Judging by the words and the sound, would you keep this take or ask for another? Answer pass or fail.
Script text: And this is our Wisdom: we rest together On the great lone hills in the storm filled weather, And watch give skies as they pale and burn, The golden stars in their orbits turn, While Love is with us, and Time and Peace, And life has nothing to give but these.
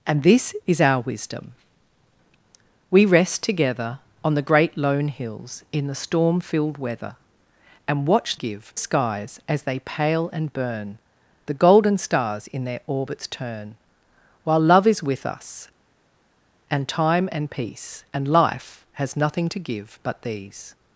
pass